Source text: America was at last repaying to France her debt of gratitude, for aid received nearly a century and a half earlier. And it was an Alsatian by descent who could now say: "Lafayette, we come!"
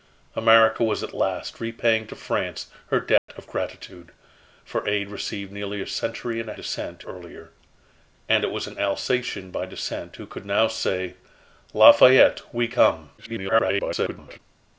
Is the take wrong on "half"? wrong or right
wrong